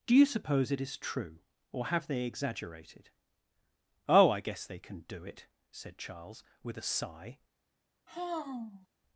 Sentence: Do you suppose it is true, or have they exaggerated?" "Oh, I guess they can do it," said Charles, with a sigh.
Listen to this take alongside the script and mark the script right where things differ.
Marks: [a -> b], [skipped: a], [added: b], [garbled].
Do you suppose it is true, or have they exaggerated?" "Oh, I guess they can do it," said Charles, with a sigh.